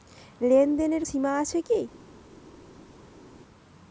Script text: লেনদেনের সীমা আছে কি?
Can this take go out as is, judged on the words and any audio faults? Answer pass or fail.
pass